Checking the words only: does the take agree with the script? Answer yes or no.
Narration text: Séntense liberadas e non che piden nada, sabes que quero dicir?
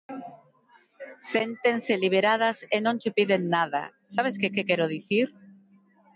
no